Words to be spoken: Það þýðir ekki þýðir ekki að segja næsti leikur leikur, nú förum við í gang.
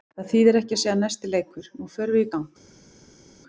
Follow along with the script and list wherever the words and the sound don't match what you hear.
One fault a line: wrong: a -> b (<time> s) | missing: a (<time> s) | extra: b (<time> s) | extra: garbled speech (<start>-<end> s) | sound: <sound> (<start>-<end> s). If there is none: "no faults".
missing: þýðir ekki (0.8 s)
missing: leikur (1.7 s)